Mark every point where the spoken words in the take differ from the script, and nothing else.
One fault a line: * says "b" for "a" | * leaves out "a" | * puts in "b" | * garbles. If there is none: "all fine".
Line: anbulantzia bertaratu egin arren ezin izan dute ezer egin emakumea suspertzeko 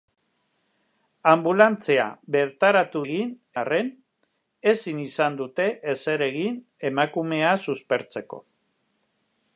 all fine